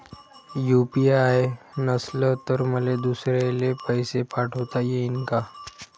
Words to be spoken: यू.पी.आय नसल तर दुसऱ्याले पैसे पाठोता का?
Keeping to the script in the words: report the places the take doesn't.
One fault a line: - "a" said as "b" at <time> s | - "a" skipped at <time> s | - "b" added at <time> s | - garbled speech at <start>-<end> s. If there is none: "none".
- "मले" added at 2.7 s
- "येईन" added at 4.8 s